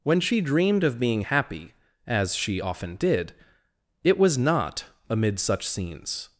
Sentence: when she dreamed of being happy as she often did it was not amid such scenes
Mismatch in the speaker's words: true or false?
false